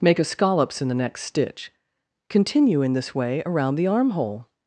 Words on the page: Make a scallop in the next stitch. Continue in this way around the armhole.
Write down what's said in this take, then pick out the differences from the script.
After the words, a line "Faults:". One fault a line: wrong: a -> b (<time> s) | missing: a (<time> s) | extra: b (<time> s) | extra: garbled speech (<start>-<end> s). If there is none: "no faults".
Make a scallops in the next stitch. Continue in this way around the armhole.
Faults:
wrong: scallop -> scallops (0.2 s)